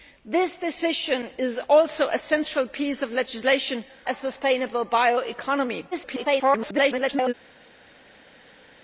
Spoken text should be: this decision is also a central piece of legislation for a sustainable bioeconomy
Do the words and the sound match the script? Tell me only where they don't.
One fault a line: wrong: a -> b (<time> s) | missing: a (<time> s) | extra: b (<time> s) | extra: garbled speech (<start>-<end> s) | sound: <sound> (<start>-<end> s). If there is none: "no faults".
missing: for (3.8 s)
extra: garbled speech (5.9-7.3 s)